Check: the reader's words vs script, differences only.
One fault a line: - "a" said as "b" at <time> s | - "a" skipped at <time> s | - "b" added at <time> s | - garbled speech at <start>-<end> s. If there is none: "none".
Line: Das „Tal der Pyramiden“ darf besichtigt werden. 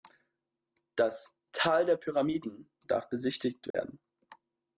none